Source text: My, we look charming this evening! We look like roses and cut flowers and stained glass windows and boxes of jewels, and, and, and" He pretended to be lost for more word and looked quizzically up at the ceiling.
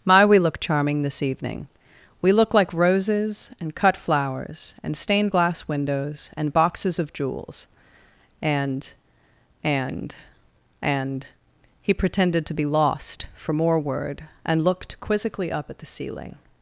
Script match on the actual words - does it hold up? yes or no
yes